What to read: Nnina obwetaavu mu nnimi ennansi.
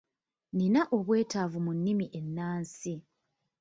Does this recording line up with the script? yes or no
yes